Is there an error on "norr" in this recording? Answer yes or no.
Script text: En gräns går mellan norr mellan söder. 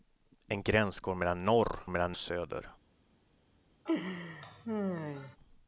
no